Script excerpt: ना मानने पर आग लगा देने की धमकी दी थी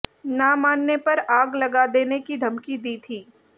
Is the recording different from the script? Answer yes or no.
no